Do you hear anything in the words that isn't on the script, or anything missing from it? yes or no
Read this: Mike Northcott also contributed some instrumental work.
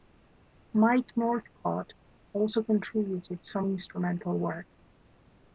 no